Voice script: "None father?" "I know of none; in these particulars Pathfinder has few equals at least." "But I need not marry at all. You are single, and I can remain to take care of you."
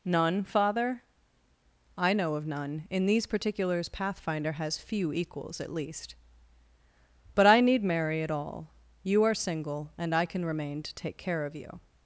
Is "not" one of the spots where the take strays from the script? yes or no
yes